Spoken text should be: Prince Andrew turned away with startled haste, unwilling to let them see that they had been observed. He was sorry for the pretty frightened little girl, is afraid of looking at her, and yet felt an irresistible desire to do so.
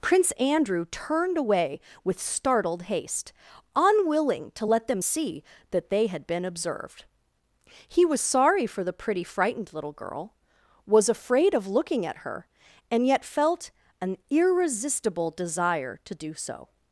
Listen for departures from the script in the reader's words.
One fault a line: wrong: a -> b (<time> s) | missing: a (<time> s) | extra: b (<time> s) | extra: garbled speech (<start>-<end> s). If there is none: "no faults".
wrong: is -> was (10.9 s)